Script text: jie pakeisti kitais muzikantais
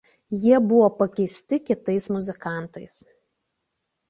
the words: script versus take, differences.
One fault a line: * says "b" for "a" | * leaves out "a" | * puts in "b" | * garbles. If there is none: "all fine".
* puts in "buvo"